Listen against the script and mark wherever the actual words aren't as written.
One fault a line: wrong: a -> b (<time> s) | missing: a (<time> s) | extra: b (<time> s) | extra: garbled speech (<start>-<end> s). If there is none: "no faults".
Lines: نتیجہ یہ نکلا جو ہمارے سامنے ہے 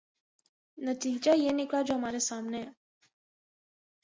no faults